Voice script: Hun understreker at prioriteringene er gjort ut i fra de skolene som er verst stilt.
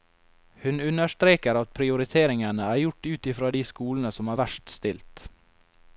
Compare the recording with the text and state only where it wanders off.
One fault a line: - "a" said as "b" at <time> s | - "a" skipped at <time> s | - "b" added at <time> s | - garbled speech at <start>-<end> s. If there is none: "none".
none